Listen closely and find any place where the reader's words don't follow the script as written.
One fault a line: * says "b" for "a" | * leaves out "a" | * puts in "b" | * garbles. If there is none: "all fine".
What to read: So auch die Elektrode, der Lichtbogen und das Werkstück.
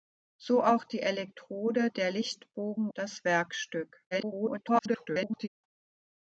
* leaves out "und"
* garbles